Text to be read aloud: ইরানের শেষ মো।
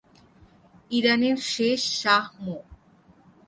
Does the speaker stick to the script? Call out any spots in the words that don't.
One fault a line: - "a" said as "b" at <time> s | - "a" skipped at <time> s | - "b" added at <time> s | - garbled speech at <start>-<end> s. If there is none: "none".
- "শাহ" added at 2.0 s